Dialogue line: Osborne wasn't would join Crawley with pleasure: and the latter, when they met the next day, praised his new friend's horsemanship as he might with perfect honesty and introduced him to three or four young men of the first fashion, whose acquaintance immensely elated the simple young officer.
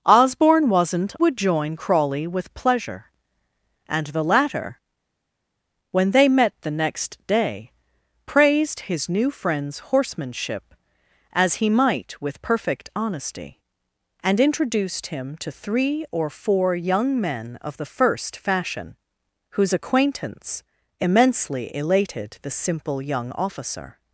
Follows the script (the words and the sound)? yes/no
yes